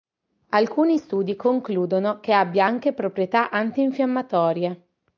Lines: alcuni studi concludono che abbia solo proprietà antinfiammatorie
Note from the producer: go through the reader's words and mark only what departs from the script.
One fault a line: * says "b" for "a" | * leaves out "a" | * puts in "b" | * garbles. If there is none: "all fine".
* says "anche" for "solo"